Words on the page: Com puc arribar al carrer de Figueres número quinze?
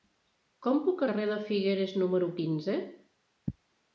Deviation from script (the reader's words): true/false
true